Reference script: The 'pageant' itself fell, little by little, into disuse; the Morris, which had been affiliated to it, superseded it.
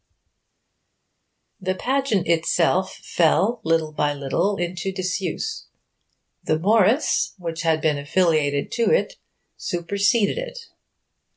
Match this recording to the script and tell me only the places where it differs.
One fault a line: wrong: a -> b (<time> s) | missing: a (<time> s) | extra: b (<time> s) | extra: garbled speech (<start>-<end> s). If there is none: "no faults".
no faults